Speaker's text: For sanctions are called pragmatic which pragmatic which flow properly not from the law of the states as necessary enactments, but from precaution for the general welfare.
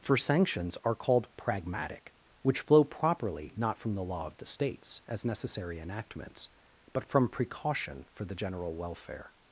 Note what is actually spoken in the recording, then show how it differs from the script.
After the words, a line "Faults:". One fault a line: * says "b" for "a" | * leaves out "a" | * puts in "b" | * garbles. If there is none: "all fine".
For sanctions are called pragmatic which flow properly not from the law of the states as necessary enactments, but from precaution for the general welfare.
Faults:
* leaves out "pragmatic which"